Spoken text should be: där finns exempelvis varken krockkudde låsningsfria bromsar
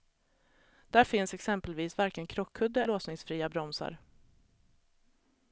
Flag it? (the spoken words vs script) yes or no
no